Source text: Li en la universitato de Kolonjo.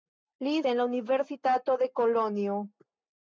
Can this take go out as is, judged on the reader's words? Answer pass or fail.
pass